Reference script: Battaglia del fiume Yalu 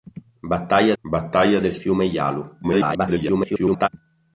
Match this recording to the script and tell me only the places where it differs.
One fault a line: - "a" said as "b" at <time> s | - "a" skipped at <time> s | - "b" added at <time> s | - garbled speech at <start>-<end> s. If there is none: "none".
- "battaglia" added at 1.0 s
- garbled speech at 2.6-3.9 s